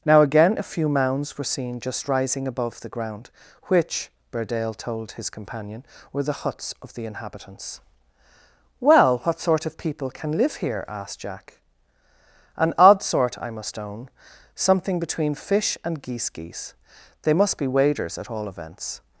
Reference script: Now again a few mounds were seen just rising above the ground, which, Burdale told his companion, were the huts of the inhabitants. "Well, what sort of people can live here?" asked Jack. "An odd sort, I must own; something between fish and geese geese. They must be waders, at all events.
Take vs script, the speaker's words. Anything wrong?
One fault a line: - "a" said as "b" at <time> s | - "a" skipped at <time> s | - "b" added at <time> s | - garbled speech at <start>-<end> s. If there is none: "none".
none